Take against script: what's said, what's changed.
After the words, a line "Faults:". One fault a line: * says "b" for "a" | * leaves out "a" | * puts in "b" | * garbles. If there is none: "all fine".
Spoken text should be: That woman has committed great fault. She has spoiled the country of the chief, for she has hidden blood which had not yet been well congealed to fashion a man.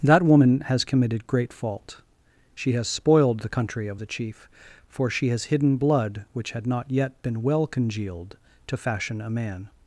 That woman has committed great fault. She has spoiled the country of the chief, for she has hidden blood which had not yet been well congealed to fashion a man.
Faults:
all fine